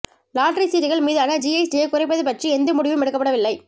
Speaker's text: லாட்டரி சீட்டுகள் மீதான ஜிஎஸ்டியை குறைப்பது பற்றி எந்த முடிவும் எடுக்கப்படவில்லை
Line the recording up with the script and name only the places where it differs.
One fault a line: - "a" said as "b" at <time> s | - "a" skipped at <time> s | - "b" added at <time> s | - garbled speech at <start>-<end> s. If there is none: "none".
none